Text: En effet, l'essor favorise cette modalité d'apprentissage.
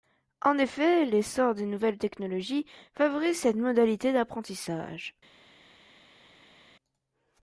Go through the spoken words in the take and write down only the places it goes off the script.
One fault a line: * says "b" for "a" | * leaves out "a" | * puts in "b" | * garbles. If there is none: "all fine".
* puts in "des nouvelles technologies"